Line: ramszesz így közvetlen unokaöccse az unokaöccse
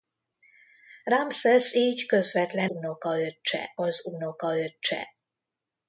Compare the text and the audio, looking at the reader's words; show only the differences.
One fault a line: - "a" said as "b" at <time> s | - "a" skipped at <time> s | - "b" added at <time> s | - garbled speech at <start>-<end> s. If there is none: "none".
none